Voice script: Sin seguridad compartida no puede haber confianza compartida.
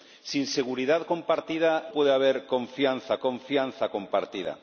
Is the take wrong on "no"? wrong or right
wrong